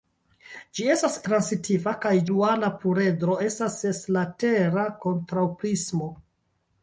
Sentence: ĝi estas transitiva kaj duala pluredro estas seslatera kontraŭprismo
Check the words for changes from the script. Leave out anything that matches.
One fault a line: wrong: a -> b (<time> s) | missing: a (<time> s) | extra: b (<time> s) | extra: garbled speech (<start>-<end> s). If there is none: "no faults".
no faults